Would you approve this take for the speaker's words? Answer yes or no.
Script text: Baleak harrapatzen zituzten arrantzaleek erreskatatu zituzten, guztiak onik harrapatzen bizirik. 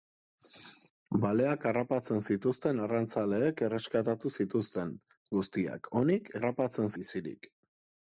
yes